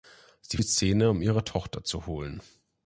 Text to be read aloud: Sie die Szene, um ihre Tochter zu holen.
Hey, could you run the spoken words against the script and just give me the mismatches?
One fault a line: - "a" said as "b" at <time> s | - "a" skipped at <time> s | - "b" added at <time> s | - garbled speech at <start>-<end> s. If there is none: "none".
none